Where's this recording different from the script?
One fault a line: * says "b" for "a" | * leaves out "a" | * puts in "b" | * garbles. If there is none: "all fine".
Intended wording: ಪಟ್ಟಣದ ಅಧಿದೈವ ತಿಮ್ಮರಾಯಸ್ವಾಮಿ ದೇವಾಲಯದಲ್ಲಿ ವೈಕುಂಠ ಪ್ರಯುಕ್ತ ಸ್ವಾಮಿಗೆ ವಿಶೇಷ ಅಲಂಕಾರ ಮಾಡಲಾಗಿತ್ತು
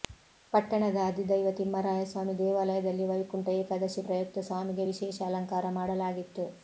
* puts in "ಏಕಾದಶಿ"